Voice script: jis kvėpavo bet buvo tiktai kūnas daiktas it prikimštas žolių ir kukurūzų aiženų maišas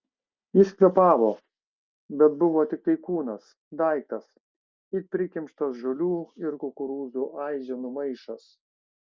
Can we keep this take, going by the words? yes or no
yes